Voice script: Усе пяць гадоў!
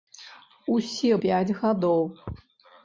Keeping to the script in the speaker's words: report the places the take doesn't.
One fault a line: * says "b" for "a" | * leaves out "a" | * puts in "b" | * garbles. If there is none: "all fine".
all fine